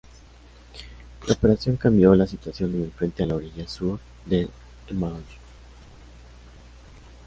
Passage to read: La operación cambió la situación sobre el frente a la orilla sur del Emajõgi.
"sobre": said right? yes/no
no